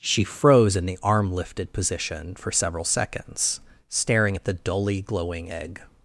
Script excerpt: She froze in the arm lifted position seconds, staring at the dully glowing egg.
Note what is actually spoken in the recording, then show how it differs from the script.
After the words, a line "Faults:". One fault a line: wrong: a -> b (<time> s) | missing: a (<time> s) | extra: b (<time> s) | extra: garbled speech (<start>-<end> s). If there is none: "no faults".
She froze in the arm lifted position for several seconds, staring at the dully glowing egg.
Faults:
extra: for several (2.3 s)